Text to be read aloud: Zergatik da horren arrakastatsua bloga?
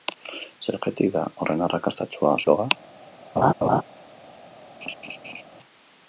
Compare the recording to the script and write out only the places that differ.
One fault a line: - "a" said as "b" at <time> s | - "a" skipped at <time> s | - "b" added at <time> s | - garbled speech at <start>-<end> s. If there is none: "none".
none